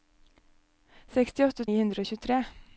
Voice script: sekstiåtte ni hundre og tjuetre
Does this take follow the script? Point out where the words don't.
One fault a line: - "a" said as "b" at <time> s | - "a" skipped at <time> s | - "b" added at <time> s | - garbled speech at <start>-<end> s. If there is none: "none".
none